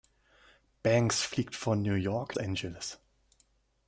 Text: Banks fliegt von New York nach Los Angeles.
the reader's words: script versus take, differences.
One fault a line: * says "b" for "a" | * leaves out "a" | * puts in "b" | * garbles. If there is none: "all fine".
* leaves out "nach Los"